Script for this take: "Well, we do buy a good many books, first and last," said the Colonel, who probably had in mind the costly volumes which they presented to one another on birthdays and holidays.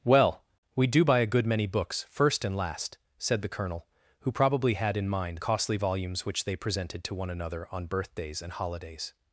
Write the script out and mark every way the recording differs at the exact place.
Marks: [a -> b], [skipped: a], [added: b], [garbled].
"Well, we do buy a good many books, first and last," said the Colonel, who probably had in mind [skipped: the] costly volumes which they presented to one another on birthdays and holidays.